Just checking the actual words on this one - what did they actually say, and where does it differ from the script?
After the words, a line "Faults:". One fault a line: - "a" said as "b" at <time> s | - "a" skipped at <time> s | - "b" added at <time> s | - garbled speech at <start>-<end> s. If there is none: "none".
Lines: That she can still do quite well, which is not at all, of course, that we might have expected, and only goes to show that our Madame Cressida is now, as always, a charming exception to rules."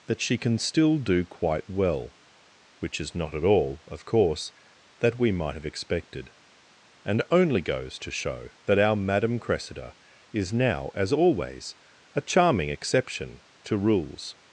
That she can still do quite well, which is not at all, of course, that we might have expected, and only goes to show that our Madame Cressida is now, as always, a charming exception to rules."
Faults:
none